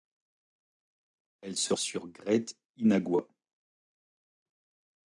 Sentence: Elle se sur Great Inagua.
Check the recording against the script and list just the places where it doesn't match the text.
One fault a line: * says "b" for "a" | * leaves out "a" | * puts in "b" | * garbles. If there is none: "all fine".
all fine